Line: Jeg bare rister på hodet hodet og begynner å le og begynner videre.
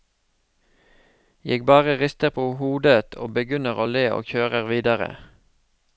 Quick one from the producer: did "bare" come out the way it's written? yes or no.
yes